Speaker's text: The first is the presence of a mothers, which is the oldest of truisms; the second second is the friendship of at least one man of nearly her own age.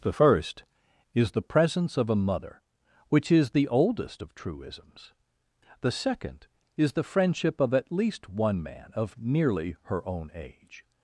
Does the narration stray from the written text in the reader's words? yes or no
yes